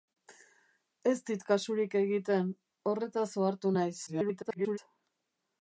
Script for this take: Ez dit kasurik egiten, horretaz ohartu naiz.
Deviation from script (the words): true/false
true